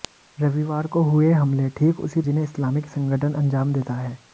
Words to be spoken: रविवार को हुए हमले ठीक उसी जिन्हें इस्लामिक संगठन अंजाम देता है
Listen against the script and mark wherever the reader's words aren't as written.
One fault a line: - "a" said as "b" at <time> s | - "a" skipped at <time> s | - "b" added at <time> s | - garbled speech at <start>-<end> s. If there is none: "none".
none